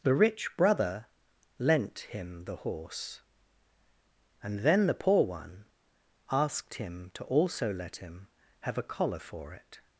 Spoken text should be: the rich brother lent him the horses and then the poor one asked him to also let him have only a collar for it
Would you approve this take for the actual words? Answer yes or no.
no